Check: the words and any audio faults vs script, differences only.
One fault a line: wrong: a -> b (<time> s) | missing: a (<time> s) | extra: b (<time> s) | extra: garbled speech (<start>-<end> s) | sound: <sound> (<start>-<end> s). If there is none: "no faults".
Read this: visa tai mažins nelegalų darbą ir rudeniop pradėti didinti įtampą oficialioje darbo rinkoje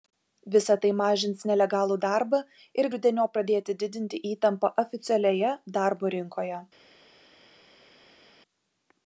no faults